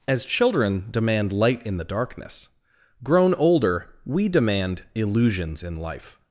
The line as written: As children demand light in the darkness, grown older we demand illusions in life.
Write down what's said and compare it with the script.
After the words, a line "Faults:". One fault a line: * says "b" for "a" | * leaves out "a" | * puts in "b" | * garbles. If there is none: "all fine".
As children demand light in the darkness, grown older we demand illusions in life.
Faults:
all fine